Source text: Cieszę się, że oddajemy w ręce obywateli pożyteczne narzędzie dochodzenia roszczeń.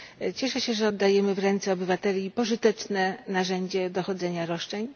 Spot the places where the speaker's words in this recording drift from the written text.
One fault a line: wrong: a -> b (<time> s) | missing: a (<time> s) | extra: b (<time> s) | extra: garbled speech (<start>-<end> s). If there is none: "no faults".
no faults